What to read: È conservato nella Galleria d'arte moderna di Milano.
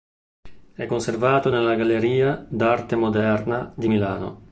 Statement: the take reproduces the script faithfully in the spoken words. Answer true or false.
true